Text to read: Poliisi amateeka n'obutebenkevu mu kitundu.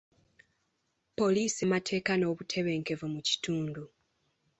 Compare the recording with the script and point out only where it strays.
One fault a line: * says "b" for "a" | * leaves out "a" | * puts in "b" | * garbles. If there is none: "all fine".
all fine